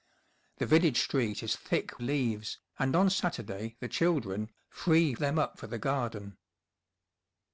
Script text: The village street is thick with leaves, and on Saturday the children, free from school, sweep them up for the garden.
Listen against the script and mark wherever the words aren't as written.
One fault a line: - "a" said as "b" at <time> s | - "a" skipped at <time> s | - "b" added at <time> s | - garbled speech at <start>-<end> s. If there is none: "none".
- "with" skipped at 2.0 s
- "from school sweep" skipped at 5.1 s